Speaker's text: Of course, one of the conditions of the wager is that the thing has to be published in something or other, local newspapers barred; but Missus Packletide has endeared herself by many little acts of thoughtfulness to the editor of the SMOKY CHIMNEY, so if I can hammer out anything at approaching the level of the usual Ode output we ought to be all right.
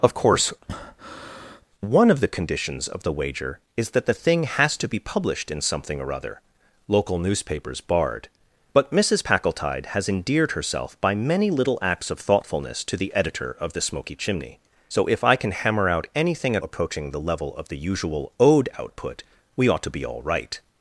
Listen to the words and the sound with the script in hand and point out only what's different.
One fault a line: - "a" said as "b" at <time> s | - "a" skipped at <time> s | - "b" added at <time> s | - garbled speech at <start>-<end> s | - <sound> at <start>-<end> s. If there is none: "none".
- breath at 0.6-1.6 s